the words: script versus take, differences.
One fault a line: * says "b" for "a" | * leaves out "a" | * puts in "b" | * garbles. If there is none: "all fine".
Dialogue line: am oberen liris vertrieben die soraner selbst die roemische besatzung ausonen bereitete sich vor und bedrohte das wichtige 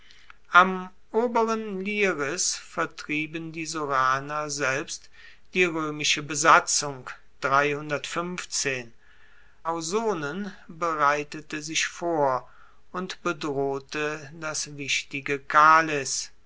all fine